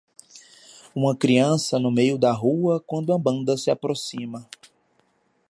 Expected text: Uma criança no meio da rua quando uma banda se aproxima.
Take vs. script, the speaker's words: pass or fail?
pass